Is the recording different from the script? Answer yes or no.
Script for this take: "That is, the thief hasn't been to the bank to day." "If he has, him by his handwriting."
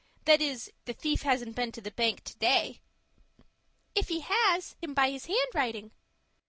no